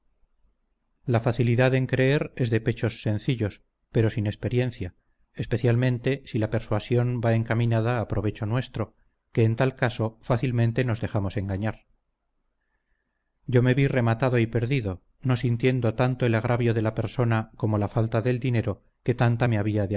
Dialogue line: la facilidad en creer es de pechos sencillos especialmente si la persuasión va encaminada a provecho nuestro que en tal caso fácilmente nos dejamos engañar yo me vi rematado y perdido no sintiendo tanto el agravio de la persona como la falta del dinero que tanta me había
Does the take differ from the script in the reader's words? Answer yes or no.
yes